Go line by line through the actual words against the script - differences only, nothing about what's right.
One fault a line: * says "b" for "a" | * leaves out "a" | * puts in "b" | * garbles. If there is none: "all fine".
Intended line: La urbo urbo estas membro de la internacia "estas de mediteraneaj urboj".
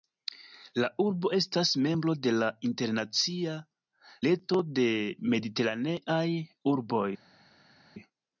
* leaves out "urbo"
* says "reto" for "estas"